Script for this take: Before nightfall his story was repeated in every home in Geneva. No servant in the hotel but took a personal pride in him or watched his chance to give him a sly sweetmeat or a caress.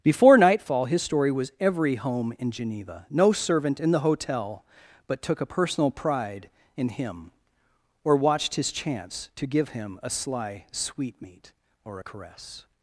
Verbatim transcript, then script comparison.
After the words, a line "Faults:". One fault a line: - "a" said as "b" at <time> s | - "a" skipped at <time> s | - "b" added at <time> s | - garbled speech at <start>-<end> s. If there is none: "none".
Before nightfall his story was every home in Geneva. No servant in the hotel but took a personal pride in him or watched his chance to give him a sly sweetmeat or a caress.
Faults:
- "repeated in" skipped at 1.5 s